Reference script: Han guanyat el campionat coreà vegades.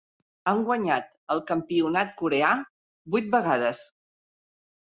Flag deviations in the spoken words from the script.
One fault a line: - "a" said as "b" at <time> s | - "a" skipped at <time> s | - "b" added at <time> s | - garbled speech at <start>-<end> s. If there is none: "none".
- "vuit" added at 3.2 s